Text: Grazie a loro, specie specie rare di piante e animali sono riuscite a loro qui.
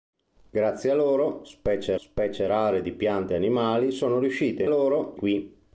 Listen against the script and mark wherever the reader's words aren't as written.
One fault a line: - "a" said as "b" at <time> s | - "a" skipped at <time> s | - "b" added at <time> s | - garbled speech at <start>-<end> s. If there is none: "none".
none